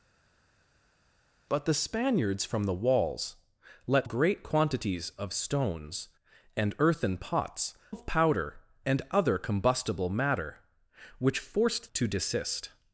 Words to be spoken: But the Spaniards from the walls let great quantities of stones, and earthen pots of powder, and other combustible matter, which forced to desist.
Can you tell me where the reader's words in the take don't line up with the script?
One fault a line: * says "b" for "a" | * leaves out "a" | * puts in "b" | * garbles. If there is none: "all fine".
all fine